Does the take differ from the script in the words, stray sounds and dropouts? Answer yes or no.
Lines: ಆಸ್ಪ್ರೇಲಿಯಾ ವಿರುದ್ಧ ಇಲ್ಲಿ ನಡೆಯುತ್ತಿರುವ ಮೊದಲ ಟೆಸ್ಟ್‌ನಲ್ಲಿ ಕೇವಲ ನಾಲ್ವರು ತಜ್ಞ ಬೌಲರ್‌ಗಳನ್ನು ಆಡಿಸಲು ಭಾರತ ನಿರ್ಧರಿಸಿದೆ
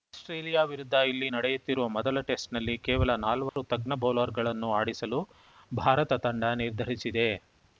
yes